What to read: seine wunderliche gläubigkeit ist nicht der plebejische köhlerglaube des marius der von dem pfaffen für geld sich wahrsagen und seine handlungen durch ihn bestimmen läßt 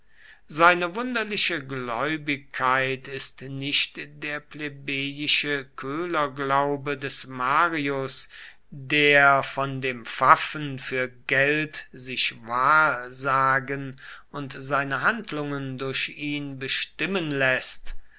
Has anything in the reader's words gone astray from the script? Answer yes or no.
no